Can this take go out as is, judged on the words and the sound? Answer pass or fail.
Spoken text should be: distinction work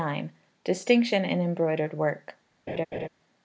fail